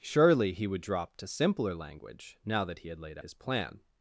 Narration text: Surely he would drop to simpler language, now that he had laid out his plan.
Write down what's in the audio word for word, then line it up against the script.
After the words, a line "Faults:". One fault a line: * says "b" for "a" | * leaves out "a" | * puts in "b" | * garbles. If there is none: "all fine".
Surely he would drop to simpler language, now that he had laid his plan.
Faults:
* leaves out "out"